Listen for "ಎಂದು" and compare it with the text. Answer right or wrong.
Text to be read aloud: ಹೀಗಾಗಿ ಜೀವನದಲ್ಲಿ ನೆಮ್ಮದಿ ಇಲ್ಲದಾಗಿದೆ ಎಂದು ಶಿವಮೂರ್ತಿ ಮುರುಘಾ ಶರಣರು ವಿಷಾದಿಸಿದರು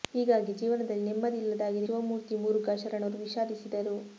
wrong